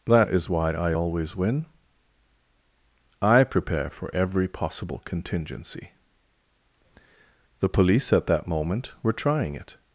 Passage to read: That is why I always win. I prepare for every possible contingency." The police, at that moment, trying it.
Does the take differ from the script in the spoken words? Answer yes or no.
yes